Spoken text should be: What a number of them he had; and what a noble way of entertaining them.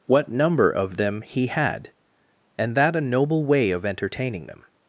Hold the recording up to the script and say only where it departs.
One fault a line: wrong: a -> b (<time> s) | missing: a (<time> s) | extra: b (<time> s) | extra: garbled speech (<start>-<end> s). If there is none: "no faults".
missing: a (0.3 s)
wrong: what -> that (2.8 s)